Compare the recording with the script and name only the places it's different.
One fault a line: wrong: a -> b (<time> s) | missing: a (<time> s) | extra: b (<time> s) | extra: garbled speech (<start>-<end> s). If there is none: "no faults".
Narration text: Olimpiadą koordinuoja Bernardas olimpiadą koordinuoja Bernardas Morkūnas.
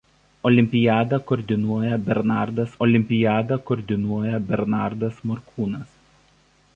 no faults